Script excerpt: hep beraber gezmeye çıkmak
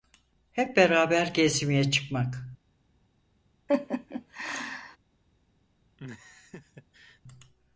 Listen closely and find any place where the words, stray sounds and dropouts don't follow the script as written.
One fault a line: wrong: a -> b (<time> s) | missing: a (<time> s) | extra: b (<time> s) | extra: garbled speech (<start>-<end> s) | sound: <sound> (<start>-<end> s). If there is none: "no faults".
sound: laugh (3.7-5.0 s)
sound: laugh (6.0-7.2 s)